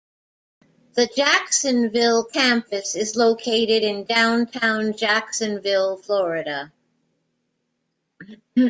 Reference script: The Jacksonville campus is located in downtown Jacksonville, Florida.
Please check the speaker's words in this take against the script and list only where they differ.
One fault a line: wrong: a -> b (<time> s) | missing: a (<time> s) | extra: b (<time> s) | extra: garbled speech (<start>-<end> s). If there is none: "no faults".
no faults